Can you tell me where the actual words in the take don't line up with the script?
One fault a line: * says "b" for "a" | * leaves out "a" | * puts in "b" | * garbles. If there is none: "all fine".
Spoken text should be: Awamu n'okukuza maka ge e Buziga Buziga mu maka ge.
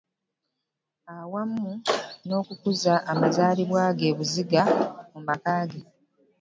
* says "amazaalibwa" for "maka"
* leaves out "Buziga"